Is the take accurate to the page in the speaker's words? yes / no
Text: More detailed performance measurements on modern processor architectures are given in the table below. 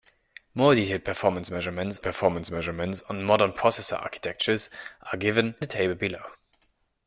no